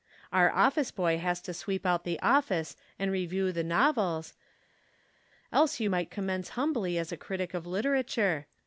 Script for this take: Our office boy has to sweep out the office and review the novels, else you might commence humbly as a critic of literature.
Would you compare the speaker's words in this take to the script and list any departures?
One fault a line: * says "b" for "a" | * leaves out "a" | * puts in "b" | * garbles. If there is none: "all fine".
all fine